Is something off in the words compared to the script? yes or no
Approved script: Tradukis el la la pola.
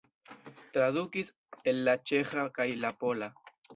yes